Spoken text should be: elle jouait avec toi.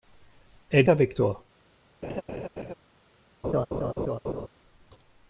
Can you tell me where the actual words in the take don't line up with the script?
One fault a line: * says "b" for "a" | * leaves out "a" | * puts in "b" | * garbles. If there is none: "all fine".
* leaves out "jouait"